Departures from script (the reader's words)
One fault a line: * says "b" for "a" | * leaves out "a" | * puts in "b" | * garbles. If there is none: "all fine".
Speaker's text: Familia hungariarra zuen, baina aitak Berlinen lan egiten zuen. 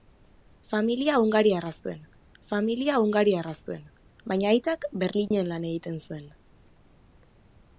* puts in "familia hungariarra zuen"